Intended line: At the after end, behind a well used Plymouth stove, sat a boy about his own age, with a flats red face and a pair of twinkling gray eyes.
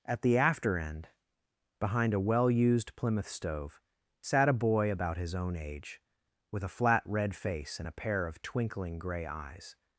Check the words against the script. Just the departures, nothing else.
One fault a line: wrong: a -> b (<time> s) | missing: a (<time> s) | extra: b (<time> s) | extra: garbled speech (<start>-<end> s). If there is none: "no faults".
wrong: flats -> flat (6.8 s)